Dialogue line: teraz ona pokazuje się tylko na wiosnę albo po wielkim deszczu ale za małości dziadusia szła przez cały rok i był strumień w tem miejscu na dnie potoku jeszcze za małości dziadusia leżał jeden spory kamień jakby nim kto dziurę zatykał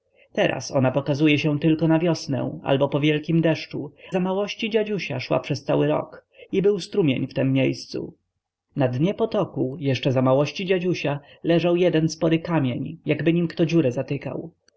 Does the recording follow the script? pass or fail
fail